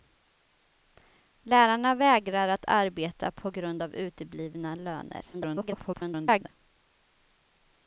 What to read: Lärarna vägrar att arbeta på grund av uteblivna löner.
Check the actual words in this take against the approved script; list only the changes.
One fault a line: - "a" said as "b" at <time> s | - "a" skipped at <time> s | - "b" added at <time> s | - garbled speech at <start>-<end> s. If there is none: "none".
- garbled speech at 5.3-6.5 s